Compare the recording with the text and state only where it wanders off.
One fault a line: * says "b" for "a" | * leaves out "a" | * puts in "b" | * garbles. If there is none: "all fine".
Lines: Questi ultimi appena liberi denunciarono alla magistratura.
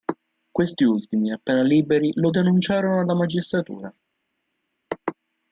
* puts in "lo"